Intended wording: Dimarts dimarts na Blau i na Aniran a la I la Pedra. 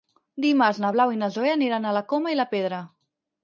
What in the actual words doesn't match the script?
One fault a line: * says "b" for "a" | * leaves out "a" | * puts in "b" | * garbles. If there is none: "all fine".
* leaves out "dimarts"
* puts in "Zoè"
* puts in "Coma"